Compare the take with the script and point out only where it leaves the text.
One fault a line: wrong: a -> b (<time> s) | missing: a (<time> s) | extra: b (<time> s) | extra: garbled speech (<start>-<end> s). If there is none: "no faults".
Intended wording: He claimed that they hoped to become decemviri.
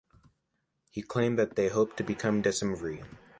no faults